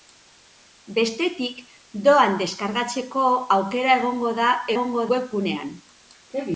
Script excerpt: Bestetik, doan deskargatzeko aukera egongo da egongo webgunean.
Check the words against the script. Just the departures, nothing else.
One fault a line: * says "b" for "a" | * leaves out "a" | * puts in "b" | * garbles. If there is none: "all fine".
all fine